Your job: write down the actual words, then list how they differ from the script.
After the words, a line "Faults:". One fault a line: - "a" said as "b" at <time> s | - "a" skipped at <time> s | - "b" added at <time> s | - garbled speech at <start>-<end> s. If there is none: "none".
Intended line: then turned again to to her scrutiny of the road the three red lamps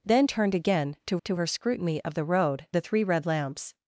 then turned again to to her scrutiny of the road the three red lamps
Faults:
none